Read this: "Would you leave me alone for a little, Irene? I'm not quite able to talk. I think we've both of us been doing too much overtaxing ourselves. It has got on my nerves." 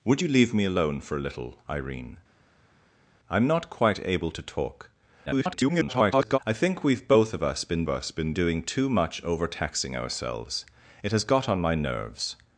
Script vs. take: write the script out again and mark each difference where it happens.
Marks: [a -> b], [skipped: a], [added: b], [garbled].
"Would you leave me alone for a little, Irene? I'm not quite able to talk. [garbled] I think we've both of us been [added: us been] doing too much overtaxing ourselves. It has got on my nerves."